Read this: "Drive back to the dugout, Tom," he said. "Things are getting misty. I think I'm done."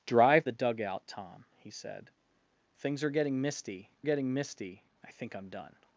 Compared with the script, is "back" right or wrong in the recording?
wrong